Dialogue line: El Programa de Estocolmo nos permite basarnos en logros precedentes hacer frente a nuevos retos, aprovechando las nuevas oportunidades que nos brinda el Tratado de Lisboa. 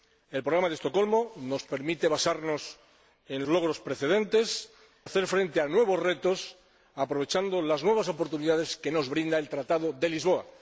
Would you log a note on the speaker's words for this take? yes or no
no